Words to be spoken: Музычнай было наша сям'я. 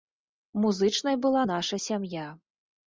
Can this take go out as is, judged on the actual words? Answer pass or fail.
fail